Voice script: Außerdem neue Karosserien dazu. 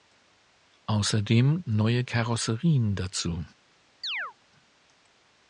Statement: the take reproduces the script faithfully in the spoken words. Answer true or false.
true